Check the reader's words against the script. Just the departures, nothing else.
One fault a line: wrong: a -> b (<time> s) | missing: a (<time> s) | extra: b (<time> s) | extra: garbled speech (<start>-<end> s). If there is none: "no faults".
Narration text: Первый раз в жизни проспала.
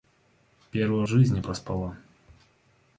missing: раз (1.0 s)